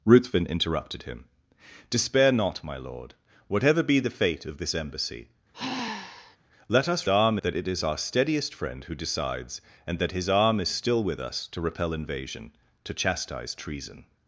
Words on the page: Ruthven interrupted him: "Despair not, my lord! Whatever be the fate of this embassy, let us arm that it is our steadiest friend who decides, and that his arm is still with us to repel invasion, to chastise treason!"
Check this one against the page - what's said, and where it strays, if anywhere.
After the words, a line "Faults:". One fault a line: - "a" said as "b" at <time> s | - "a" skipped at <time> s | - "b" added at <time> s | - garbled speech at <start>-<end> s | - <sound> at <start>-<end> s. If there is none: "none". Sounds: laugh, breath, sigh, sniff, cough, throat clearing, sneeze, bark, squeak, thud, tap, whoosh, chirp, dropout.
Ruthven interrupted him: "Despair not, my lord! Whatever be the fate of this embassy, let us arm that it is our steadiest friend who decides, and that his arm is still with us to repel invasion, to chastise treason!"
Faults:
- sigh at 5.5-6.4 s